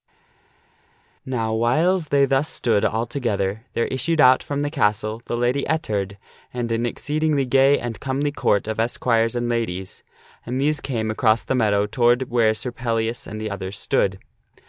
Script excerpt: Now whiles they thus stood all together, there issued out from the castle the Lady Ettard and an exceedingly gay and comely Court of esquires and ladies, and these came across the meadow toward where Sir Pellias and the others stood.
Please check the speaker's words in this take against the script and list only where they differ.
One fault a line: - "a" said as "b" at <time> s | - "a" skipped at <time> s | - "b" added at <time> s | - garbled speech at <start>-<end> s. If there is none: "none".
none